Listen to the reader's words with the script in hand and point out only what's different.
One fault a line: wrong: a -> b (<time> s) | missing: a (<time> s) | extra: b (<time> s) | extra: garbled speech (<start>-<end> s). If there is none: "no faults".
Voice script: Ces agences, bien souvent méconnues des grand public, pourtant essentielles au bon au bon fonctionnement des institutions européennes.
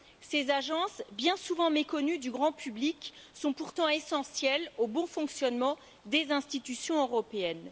wrong: des -> du (2.2 s)
extra: sont (3.3 s)
missing: au bon (5.1 s)